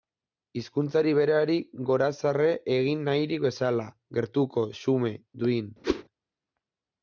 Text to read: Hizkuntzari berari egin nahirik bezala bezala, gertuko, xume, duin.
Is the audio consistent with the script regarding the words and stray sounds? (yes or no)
no